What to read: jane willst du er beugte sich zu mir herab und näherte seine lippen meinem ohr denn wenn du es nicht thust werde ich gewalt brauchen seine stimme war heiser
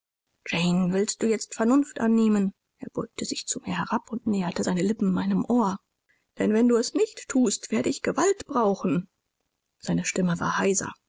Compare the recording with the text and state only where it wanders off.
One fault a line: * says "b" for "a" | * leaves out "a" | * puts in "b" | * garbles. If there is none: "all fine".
* puts in "jetzt vernunft annehmen"